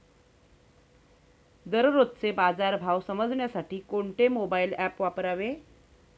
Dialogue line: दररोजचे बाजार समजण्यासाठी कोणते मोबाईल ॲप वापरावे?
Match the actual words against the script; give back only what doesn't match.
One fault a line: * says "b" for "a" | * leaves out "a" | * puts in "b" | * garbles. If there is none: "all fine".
* puts in "भाव"